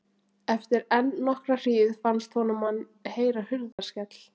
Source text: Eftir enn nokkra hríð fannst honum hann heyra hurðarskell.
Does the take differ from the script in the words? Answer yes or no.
no